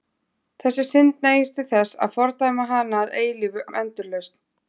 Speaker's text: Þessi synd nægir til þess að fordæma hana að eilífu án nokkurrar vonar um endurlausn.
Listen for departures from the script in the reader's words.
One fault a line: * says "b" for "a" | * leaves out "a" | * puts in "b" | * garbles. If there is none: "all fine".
* leaves out "án nokkurrar vonar"